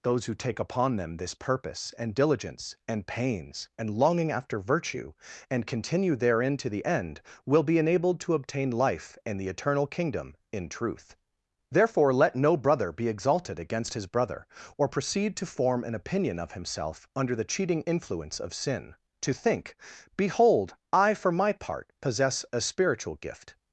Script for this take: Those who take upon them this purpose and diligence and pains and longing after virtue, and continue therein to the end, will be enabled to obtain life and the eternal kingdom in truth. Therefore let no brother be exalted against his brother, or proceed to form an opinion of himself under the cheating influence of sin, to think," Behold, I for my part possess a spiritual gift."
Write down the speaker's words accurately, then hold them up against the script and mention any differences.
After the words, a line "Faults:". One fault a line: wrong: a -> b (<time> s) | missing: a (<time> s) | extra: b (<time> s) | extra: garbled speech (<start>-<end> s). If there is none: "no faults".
Those who take upon them this purpose and diligence and pains and longing after virtue, and continue therein to the end, will be enabled to obtain life and the eternal kingdom in truth. Therefore let no brother be exalted against his brother, or proceed to form an opinion of himself under the cheating influence of sin, to think," Behold, I for my part possess a spiritual gift."
Faults:
no faults